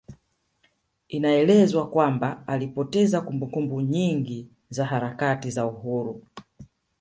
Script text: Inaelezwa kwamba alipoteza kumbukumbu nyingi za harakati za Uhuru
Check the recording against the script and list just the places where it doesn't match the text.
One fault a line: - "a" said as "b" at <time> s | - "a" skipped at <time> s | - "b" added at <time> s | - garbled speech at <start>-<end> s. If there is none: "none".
none